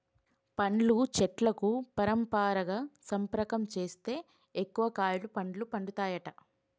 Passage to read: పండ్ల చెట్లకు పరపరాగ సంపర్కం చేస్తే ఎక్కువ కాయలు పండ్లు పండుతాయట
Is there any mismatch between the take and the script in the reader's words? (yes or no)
no